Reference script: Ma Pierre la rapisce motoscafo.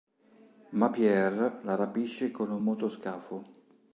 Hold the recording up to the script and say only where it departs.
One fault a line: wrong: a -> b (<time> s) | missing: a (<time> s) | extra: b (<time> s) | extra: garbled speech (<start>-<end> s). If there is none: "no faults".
extra: con un (2.3 s)